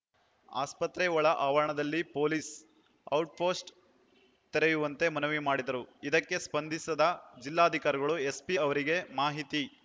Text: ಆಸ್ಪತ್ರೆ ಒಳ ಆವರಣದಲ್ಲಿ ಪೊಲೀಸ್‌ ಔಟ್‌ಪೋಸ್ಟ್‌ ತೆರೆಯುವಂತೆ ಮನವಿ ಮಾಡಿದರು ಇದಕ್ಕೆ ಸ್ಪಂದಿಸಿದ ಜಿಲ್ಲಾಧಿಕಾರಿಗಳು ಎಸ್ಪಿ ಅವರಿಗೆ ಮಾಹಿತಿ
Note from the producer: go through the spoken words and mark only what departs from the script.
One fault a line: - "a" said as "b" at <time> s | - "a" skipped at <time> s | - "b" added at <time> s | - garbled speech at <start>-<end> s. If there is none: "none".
none